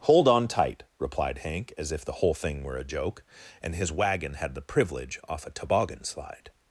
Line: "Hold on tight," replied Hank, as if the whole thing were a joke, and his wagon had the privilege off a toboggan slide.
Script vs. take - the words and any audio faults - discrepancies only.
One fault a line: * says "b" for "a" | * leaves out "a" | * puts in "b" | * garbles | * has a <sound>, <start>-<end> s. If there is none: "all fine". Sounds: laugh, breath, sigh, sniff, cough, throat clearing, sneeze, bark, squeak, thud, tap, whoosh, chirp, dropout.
all fine